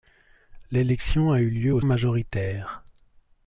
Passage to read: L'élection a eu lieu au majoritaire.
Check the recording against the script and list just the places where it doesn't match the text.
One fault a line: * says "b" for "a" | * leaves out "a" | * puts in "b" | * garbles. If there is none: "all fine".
all fine